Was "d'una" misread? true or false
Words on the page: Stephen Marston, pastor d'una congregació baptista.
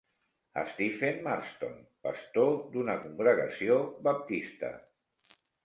false